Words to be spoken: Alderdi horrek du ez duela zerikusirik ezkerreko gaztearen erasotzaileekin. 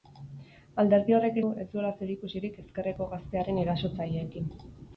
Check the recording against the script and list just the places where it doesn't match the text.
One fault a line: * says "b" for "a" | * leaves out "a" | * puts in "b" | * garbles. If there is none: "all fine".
all fine